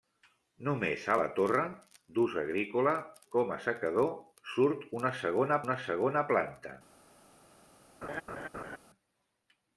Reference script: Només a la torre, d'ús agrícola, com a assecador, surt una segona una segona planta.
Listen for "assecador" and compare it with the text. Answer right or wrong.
right